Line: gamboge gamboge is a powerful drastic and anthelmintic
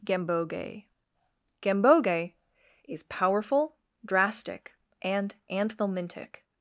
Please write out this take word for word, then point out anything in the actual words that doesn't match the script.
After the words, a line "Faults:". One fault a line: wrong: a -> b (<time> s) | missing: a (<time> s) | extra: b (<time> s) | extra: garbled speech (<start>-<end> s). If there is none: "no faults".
gamboge gamboge is powerful drastic and anthelmintic
Faults:
missing: a (3.0 s)